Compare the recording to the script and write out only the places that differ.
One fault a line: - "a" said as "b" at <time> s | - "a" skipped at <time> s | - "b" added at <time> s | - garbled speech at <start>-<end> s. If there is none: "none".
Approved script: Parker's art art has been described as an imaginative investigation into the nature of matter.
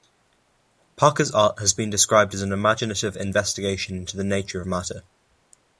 - "art" skipped at 1.6 s